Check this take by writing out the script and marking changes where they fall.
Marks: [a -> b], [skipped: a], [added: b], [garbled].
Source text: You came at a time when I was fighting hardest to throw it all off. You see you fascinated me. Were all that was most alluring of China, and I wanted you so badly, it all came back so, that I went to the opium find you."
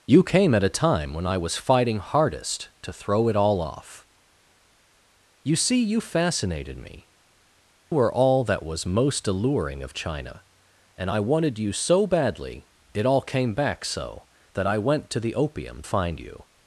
You came at a time when I was fighting hardest to throw it all off. You see you fascinated me. Were all that was most alluring of China, and I wanted you so badly, it all came back so, that I went to the opium find you."